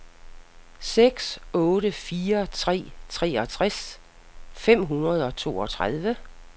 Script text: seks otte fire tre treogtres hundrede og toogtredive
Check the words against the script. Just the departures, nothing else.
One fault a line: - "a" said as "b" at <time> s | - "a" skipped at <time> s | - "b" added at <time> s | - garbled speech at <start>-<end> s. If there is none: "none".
- "fem" added at 4.5 s